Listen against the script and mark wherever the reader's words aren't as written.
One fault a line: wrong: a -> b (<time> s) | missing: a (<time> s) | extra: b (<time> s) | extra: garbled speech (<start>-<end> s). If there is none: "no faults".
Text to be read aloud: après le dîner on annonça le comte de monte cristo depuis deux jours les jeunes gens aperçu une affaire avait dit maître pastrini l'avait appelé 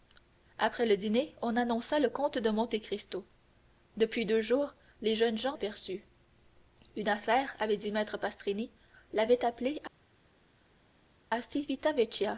no faults